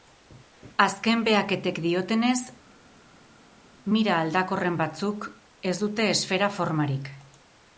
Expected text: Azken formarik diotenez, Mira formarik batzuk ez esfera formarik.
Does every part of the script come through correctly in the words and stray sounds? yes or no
no